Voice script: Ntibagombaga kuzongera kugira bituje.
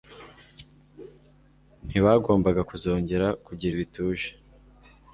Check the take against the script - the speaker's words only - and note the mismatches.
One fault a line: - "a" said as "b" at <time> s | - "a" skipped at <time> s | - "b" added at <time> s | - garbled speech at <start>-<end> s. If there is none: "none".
none